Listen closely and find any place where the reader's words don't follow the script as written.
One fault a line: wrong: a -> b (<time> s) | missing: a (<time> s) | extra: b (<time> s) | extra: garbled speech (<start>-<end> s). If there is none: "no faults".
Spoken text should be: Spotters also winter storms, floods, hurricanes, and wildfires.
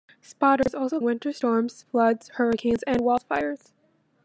no faults